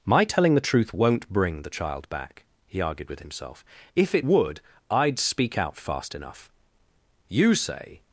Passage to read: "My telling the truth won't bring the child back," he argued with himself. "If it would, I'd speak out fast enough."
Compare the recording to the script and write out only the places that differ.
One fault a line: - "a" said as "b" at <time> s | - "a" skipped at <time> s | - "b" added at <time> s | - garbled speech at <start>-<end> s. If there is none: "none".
- "You say" added at 7.3 s